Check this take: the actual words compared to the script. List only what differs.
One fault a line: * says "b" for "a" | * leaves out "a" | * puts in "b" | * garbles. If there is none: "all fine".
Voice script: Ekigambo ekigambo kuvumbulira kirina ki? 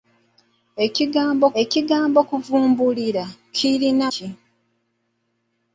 all fine